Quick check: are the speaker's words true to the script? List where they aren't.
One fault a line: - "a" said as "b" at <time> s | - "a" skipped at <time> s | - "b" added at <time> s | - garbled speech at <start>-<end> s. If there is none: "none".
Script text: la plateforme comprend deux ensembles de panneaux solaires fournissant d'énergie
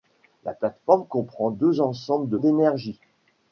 - "panneaux solaires fournissant" skipped at 2.4 s